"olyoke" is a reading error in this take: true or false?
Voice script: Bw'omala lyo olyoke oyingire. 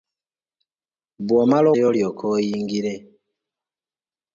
false